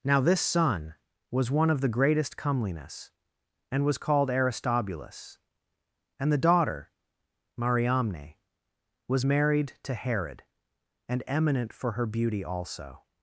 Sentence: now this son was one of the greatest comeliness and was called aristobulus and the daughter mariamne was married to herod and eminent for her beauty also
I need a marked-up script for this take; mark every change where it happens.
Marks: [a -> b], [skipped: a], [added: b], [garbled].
now this son was one of the greatest comeliness and was called aristobulus and the daughter mariamne was married to herod and eminent for her beauty also